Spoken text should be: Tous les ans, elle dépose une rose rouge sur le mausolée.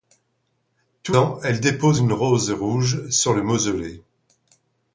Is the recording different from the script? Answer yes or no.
yes